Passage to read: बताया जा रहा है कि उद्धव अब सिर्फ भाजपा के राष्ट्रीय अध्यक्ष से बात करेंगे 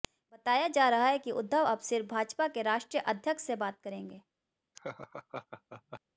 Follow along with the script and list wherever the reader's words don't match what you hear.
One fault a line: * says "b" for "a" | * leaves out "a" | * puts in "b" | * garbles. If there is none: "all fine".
all fine